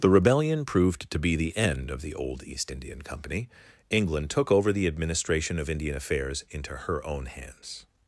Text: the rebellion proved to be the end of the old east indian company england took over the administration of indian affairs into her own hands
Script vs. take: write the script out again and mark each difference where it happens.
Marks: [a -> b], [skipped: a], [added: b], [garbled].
the rebellion proved to be the end of the old east indian company england took over the administration of indian affairs into her own hands